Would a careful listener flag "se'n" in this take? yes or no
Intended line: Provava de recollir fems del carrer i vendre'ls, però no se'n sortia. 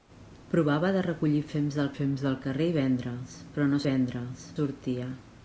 yes